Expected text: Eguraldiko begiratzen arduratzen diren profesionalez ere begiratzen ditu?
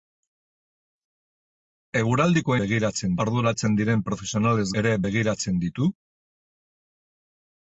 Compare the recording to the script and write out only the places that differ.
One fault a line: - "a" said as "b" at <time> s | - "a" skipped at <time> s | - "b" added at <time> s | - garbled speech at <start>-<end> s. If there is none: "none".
none